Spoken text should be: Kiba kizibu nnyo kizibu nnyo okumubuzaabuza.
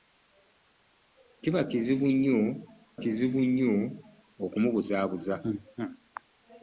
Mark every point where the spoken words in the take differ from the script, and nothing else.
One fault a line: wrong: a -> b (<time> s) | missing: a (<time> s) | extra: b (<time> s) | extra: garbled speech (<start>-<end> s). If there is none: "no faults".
no faults